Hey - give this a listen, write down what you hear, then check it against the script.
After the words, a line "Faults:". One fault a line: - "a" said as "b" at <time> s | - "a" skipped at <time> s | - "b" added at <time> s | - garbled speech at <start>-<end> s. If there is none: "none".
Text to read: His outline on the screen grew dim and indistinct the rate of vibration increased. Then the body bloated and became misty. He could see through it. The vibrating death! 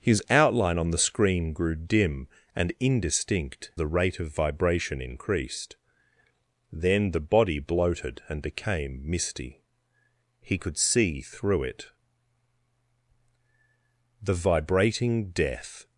His outline on the screen grew dim and indistinct the rate of vibration increased. Then the body bloated and became misty. He could see through it. The vibrating death!
Faults:
none